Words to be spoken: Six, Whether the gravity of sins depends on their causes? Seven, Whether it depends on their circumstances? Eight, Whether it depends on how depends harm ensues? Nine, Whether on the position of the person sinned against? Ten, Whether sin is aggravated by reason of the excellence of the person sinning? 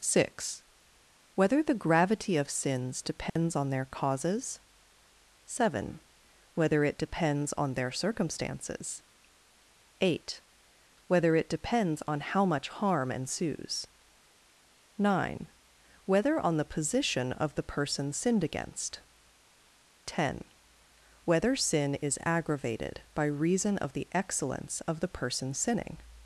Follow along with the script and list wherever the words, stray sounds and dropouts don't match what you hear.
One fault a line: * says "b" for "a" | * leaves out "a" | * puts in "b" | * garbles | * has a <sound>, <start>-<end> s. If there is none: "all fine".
* has a dropout, 3.3-3.4 s
* says "much" for "depends"